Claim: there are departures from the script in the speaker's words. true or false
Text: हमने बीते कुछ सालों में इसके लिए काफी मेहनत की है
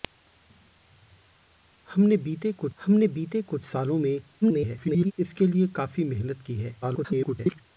true